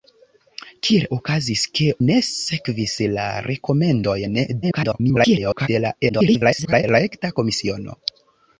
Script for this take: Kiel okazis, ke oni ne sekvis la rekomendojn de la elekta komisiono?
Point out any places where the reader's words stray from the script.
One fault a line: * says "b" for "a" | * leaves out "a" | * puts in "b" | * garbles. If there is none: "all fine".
* leaves out "oni"
* garbles
* garbles